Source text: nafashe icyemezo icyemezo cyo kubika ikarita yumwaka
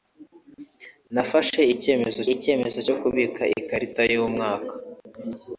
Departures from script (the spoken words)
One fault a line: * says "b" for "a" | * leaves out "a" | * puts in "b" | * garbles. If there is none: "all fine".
all fine